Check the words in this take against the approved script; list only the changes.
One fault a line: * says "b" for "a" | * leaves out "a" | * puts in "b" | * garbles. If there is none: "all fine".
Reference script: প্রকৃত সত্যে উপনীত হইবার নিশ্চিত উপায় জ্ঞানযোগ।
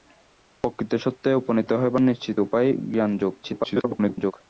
* garbles